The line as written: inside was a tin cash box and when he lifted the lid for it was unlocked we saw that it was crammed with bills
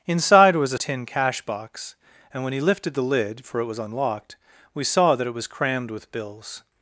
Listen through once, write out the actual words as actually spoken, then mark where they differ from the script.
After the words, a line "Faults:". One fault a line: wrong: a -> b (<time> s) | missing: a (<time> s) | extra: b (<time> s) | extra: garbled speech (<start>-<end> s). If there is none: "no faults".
inside was a tin cash box and when he lifted the lid for it was unlocked we saw that it was crammed with bills
Faults:
no faults